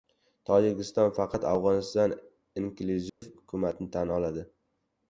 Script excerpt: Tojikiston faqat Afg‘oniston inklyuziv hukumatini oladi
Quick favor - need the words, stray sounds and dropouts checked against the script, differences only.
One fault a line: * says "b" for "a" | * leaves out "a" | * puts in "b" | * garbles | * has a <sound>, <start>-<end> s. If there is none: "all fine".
* has a dropout, 3.1-3.2 s
* puts in "tan"